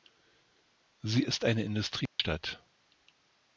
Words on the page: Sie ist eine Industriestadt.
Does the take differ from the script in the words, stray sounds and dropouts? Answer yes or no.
yes